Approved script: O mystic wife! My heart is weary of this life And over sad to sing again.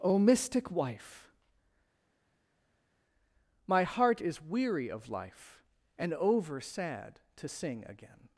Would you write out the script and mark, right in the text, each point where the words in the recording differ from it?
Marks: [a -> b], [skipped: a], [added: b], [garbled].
O mystic wife! My heart is weary of [skipped: this] life And over sad to sing again.